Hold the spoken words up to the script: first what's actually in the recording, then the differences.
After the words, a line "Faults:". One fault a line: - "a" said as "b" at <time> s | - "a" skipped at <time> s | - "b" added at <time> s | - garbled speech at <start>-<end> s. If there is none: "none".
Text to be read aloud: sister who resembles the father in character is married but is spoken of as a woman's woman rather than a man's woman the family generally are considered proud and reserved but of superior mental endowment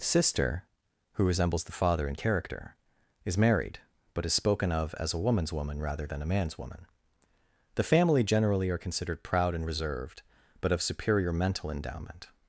sister who resembles the father in character is married but is spoken of as a woman's woman rather than a man's woman the family generally are considered proud and reserved but of superior mental endowment
Faults:
none